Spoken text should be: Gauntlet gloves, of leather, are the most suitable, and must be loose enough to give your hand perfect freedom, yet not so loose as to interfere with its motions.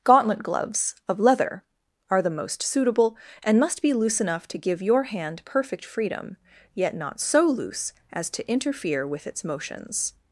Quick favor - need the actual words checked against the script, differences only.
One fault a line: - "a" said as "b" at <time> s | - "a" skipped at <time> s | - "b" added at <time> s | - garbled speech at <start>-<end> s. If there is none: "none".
none